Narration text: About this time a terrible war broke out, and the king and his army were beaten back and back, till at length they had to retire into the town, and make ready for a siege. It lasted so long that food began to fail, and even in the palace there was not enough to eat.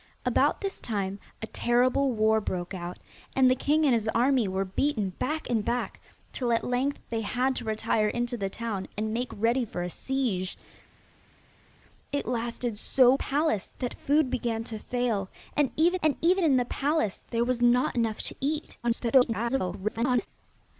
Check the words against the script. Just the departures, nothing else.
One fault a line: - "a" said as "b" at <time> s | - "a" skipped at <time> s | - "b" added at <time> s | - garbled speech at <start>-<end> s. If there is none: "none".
- "long" said as "palace" at 13.2 s
- "and even" added at 16.0 s
- garbled speech at 18.8-20.3 s